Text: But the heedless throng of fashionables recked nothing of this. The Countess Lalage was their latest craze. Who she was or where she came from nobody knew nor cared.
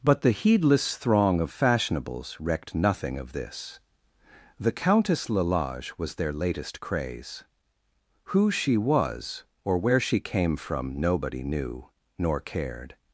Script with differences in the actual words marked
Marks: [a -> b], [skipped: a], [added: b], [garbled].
But the heedless throng of fashionables recked nothing of this. The Countess Lalage was their latest craze. Who she was or where she came from nobody knew nor cared.